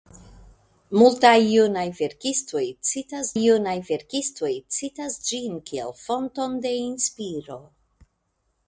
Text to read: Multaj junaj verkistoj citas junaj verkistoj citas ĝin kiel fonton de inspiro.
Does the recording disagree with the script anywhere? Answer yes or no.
no